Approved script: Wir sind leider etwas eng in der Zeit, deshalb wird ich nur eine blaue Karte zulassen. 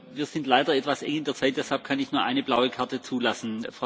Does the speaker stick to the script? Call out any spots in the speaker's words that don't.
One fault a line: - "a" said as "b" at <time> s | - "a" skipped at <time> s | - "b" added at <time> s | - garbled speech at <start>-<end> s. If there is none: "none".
- "wird" said as "kann" at 1.8 s